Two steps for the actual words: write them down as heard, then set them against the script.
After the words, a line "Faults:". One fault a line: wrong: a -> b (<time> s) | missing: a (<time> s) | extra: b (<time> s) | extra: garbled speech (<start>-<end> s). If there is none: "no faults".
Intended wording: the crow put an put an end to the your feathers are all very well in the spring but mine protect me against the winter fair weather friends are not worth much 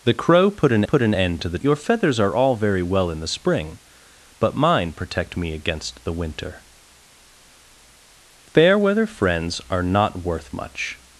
the crow put an put an end to the your feathers are all very well in the spring but mine protect me against the winter fair weather friends are not worth much
Faults:
no faults